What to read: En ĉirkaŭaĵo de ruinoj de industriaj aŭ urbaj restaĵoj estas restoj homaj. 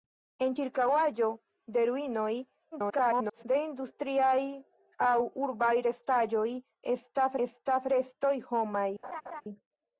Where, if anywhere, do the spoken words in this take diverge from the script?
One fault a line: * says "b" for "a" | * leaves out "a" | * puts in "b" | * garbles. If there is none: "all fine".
* garbles
* puts in "estas"